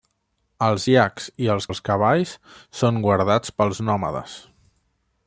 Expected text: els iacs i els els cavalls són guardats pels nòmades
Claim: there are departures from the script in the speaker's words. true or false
false